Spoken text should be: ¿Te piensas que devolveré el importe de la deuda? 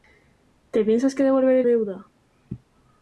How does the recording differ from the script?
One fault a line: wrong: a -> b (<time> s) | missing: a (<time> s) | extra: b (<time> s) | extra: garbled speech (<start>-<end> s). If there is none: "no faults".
missing: importe de la (1.7 s)